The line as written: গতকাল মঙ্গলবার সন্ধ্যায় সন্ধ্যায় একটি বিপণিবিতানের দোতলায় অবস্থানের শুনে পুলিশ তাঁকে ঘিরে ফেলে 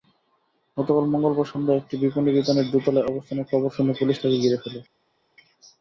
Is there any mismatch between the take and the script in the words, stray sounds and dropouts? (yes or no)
yes